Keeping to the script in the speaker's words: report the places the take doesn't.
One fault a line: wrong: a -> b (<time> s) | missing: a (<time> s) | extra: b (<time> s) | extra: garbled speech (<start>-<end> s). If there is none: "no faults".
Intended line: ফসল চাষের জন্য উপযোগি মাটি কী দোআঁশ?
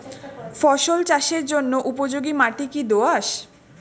no faults